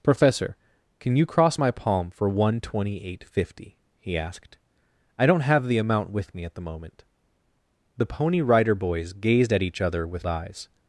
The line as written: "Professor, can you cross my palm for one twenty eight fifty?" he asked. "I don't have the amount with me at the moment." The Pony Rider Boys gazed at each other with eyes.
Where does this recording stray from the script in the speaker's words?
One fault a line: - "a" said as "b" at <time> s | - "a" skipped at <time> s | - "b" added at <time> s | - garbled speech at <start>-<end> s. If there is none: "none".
none